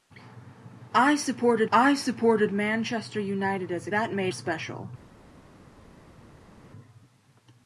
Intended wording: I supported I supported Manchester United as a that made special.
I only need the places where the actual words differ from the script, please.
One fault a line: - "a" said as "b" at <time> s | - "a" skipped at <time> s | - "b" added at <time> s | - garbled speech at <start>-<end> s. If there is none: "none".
none